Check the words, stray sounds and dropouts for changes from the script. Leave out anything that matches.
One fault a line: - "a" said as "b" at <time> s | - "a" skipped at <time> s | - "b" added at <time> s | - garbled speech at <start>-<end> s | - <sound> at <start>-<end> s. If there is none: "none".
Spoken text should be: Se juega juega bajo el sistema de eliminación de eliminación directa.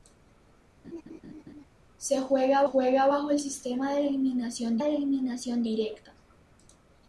- laugh at 0.8-1.6 s